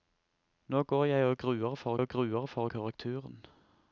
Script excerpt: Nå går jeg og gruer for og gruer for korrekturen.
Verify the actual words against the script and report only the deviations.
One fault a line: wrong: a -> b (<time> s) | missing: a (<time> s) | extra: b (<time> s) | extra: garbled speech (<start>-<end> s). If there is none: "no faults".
no faults